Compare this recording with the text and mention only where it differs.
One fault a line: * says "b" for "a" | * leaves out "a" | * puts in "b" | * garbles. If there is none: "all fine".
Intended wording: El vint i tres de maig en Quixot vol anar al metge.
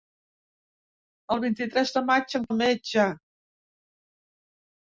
* leaves out "Quixot vol anar"